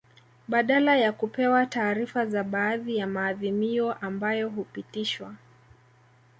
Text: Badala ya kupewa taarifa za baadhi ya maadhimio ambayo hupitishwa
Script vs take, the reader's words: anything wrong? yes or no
no